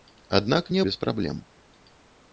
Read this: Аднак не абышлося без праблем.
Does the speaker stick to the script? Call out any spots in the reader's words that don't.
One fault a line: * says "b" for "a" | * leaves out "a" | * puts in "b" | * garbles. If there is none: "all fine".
* leaves out "абышлося"